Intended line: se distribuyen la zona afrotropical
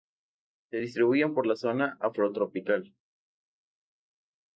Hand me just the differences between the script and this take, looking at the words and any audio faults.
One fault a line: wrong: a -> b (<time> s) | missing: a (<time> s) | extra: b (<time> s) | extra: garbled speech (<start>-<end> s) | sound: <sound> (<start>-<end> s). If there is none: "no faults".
extra: por (1.3 s)